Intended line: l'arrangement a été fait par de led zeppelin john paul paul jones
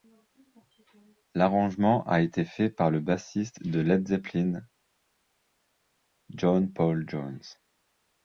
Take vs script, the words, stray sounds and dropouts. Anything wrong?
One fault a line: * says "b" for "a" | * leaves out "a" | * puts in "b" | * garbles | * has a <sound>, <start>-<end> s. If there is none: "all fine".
* puts in "le bassiste"
* leaves out "paul"